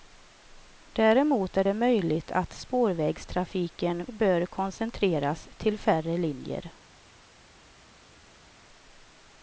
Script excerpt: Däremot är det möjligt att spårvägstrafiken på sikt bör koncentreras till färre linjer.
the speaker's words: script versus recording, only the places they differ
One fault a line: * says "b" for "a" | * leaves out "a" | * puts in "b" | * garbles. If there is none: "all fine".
* leaves out "på sikt"